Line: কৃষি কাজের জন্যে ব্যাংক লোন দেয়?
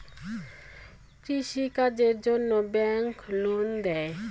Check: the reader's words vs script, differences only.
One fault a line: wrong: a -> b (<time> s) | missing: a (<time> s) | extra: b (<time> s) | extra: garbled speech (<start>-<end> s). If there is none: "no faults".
no faults